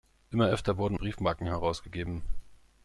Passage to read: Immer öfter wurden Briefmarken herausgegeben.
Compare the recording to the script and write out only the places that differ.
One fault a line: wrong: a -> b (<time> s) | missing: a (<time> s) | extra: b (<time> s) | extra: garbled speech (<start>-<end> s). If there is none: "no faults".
no faults